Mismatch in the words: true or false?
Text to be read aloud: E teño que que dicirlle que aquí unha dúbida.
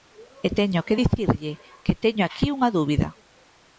true